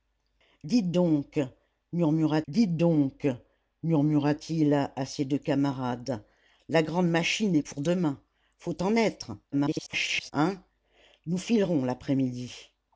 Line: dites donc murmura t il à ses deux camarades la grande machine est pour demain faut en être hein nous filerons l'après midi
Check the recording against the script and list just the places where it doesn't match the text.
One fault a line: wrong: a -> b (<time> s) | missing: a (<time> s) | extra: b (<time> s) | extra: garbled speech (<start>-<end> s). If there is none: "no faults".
extra: dites donc murmura (2.5 s)
extra: garbled speech (9.5-10.3 s)